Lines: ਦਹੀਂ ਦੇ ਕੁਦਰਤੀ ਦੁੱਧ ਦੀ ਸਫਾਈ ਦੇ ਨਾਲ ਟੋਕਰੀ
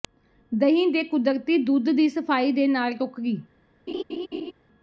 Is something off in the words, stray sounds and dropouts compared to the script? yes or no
yes